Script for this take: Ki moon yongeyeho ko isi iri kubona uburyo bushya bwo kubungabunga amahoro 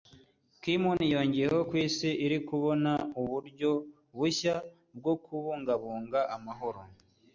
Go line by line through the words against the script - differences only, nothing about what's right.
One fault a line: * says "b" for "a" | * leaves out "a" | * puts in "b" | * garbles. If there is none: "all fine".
all fine